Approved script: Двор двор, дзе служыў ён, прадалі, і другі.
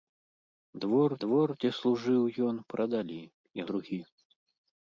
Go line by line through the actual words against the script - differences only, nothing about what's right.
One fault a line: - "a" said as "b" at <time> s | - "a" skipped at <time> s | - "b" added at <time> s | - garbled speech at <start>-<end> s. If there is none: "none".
none